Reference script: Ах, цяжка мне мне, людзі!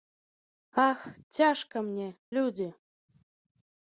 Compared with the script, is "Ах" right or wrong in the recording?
right